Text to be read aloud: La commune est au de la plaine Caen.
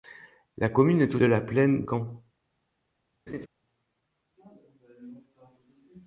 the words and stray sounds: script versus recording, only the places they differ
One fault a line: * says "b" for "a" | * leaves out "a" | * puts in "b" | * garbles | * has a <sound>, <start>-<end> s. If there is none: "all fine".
* has a laugh, 3.3-3.5 s